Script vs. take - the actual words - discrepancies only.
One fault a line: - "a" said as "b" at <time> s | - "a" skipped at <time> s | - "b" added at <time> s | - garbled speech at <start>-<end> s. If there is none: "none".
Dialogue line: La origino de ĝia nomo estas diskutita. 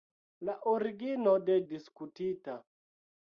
- "ĝia nomo estas" skipped at 1.6 s